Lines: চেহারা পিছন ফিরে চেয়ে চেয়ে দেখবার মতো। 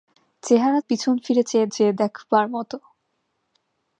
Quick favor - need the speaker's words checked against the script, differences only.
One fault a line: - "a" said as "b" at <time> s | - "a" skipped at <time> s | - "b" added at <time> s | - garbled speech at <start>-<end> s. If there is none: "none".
none